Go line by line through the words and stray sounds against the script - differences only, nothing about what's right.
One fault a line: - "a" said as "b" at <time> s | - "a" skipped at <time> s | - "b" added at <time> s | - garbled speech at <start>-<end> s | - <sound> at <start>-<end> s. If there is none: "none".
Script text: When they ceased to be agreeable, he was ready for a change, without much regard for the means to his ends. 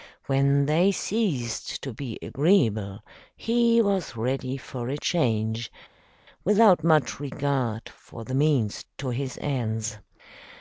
none